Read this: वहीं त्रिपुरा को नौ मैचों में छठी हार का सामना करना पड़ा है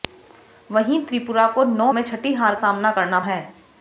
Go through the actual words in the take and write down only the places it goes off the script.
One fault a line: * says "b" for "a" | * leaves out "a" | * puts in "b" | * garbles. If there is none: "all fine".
* leaves out "मैचों"
* leaves out "का"
* leaves out "पड़ा"